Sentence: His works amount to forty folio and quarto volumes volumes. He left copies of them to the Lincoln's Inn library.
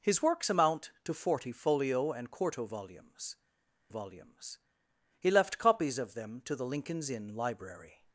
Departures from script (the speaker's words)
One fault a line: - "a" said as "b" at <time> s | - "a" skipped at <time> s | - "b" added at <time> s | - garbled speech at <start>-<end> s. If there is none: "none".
none